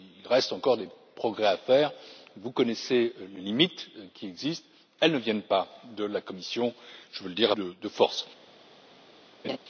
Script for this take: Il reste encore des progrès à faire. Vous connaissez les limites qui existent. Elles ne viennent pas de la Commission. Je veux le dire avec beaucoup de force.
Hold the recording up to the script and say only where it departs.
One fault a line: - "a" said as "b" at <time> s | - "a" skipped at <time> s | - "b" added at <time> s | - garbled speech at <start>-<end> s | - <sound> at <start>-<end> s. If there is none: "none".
- "avec beaucoup" skipped at 7.5 s
- laugh at 9.4-9.6 s